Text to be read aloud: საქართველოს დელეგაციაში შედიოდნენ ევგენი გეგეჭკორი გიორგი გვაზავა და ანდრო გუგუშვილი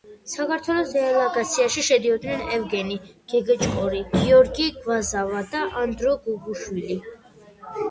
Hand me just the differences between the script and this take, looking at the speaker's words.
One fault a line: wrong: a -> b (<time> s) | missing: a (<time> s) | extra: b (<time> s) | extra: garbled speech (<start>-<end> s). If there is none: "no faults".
no faults